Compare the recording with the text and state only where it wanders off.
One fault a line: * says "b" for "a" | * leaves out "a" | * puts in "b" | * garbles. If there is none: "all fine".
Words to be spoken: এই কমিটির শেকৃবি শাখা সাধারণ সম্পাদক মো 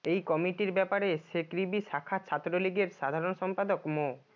* puts in "ব্যাপারে"
* puts in "ছাত্রলীগের"